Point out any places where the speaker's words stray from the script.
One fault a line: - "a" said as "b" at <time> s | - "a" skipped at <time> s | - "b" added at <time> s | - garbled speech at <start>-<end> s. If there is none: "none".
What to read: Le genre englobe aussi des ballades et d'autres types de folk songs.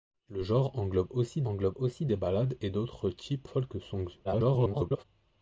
- "englobe aussi" added at 1.5 s
- "de" skipped at 3.5 s
- garbled speech at 4.2-5.0 s